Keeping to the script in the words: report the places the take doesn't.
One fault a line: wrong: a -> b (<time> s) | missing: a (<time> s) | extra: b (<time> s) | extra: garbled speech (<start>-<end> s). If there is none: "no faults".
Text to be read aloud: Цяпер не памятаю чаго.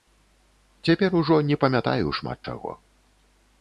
extra: ужо (1.2 s)
extra: шмат (2.2 s)